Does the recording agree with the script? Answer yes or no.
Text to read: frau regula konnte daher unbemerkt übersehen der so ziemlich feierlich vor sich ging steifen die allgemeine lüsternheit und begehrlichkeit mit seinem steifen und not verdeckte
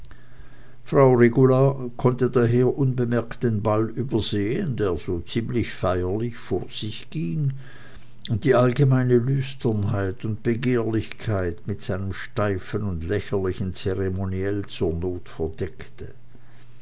no